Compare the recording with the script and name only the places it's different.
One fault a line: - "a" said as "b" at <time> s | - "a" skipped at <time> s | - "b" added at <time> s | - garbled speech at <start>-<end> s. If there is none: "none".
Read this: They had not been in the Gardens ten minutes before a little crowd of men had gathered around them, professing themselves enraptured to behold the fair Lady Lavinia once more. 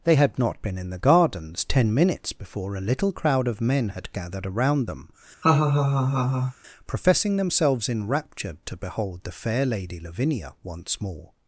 none